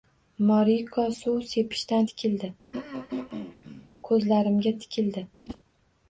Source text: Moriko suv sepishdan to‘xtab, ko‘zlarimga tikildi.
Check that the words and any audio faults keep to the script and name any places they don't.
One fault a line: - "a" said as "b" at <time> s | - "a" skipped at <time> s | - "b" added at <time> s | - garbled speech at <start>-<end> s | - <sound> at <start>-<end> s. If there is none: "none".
- "to‘xtab" said as "tikildi" at 2.1 s
- throat clearing at 2.7-3.9 s
- whoosh at 5.5-5.6 s